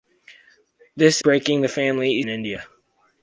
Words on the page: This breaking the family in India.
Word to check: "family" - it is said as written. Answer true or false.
true